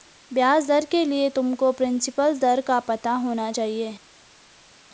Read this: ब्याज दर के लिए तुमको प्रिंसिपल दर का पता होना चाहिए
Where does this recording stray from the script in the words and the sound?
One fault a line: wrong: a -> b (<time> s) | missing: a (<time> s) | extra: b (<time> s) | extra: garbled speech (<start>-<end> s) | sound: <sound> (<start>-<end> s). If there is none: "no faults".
no faults